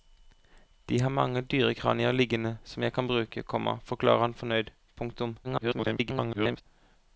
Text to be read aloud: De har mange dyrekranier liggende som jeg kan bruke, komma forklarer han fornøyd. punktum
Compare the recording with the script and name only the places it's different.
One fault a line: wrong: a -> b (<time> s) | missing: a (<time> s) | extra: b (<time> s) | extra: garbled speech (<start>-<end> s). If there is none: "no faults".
extra: garbled speech (5.4-6.6 s)